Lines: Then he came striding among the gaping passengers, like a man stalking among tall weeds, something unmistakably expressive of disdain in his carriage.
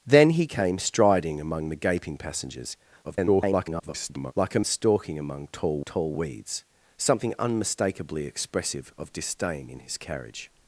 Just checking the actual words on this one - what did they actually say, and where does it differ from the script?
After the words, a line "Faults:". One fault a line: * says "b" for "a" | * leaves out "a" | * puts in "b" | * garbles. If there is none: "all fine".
Then he came striding among the gaping passengers, [garbled] like a stalking among tall tall weeds, something unmistakably expressive of disdain in his carriage.
Faults:
* garbles
* leaves out "man"
* puts in "tall"